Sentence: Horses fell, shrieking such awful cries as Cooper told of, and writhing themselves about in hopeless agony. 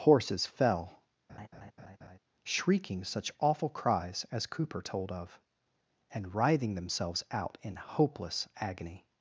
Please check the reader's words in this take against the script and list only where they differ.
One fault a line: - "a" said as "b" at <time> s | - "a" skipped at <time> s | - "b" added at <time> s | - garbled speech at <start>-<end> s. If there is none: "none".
- "about" said as "out" at 7.3 s